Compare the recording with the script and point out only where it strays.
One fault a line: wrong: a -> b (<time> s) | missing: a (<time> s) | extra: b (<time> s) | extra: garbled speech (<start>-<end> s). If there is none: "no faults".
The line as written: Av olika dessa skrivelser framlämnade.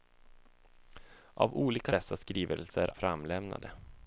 no faults